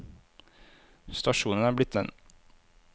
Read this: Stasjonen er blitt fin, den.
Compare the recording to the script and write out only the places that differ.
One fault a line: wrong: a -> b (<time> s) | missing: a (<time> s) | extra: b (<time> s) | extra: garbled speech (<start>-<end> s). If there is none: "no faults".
missing: fin (2.0 s)